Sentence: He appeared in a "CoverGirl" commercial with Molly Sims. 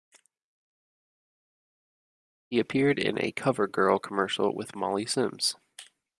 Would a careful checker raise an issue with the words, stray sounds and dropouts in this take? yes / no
no